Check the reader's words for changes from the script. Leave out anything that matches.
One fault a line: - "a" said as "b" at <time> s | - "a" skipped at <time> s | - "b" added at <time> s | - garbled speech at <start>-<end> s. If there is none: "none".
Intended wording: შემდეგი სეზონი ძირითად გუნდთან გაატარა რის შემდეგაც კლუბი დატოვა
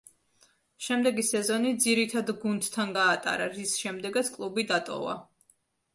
none